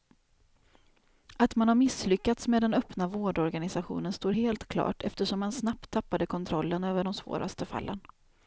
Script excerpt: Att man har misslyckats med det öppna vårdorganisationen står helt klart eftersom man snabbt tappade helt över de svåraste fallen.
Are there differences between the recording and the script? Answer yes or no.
yes